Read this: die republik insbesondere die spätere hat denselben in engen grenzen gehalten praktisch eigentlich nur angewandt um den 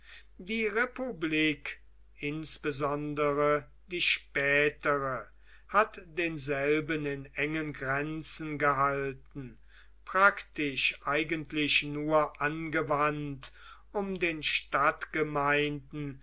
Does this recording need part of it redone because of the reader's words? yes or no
no